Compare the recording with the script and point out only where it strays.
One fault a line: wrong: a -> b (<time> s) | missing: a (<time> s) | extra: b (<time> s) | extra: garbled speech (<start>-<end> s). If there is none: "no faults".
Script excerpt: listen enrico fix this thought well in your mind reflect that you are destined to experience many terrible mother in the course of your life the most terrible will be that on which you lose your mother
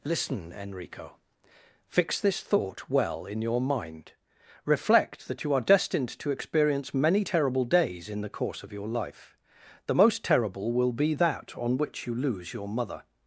wrong: mother -> days (7.6 s)